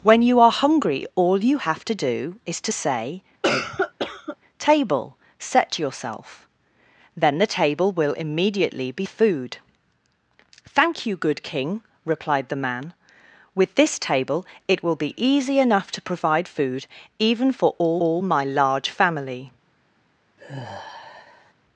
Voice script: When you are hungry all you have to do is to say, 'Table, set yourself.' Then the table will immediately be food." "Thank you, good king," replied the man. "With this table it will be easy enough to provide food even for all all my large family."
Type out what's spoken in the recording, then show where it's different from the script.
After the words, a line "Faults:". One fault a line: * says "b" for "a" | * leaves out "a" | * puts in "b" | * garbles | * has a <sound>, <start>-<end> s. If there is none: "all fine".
When you are hungry all you have to do is to say, 'Table, set yourself.' Then the table will immediately be food." "Thank you, good king," replied the man. "With this table it will be easy enough to provide food even for all all my large family."
Faults:
* has a cough, 3.4-4.4 s
* has a sigh, 20.4-21.5 s